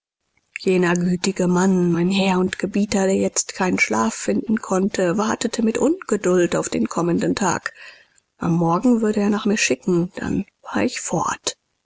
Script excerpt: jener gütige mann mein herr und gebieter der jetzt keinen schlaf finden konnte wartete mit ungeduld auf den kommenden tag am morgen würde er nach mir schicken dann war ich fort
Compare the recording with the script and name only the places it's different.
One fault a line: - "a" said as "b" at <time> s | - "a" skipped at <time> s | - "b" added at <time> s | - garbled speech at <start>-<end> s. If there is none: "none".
none